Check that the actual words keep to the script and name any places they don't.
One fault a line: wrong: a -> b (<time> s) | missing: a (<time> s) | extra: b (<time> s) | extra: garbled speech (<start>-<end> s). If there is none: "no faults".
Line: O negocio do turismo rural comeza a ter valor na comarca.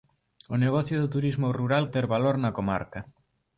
missing: comeza (1.9 s)